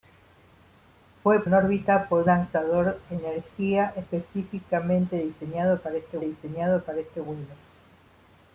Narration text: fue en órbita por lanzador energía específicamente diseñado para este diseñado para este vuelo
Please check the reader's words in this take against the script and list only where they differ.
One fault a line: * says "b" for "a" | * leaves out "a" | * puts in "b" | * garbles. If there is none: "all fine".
all fine